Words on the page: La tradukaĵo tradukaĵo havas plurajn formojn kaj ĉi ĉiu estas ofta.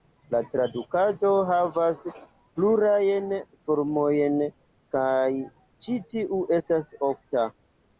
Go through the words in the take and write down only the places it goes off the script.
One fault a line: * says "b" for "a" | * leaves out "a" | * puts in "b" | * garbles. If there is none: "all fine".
* leaves out "tradukaĵo"
* says "tiu" for "ĉiu"